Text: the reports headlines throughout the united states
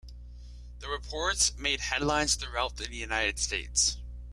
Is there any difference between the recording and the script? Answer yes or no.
yes